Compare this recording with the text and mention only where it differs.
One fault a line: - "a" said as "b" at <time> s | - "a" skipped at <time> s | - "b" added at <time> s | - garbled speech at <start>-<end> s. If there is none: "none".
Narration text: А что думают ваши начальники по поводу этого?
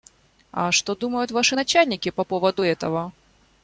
none